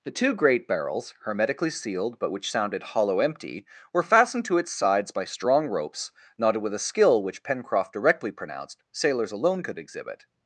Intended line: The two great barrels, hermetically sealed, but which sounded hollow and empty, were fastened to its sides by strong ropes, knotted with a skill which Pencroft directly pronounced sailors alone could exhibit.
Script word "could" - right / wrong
right